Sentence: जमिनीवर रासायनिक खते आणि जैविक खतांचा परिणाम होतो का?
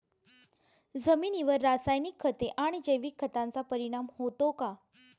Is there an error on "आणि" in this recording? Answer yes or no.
no